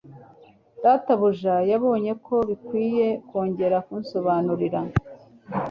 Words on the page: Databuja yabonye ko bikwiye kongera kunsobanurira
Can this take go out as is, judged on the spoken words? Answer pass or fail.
pass